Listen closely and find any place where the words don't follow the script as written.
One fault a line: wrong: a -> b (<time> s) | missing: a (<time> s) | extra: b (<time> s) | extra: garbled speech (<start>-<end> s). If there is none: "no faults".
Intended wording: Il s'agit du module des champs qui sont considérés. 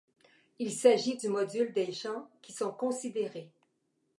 no faults